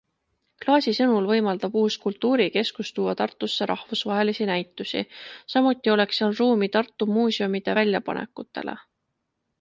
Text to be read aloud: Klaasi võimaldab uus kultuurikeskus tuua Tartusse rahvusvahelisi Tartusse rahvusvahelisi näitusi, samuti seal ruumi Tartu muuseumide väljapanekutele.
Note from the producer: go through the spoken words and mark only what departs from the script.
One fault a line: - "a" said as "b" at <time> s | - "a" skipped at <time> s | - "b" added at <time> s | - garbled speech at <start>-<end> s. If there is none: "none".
- "sõnul" added at 1.0 s
- "Tartusse rahvusvahelisi" skipped at 4.5 s
- "oleks" added at 6.0 s